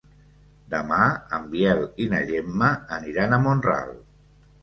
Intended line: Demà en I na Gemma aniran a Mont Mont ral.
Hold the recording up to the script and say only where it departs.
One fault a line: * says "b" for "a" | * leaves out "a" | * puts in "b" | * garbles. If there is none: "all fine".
* puts in "Biel"
* leaves out "Mont"